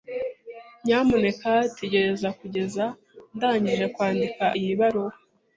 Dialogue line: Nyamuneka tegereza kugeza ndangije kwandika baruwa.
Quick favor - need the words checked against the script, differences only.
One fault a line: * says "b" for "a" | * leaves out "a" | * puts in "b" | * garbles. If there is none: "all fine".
* puts in "iyi"